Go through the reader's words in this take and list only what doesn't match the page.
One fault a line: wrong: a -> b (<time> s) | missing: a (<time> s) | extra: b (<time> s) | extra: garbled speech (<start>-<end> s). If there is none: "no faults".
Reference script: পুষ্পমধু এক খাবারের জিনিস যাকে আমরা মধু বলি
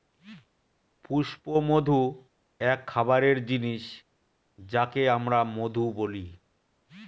no faults